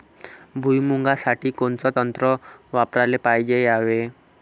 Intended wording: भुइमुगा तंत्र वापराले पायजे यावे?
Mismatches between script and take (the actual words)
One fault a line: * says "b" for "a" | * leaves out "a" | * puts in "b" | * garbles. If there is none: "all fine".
* puts in "साठी कोनचं"